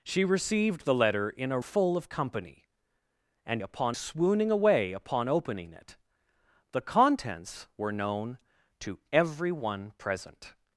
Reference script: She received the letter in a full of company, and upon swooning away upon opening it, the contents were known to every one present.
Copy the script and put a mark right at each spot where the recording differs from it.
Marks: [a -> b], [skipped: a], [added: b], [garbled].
She received the letter in a full of company, and upon swooning away upon opening it, the contents were known to every one present.